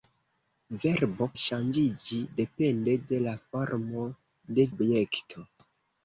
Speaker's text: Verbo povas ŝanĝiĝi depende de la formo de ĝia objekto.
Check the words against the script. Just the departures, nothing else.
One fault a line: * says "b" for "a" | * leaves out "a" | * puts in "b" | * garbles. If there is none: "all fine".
* leaves out "povas"
* leaves out "ĝia"